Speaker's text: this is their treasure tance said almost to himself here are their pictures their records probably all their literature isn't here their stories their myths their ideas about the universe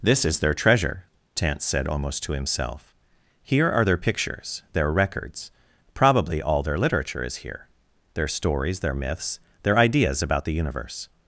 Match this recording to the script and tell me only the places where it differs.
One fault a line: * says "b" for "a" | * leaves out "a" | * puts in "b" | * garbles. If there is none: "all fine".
* says "is" for "isn't"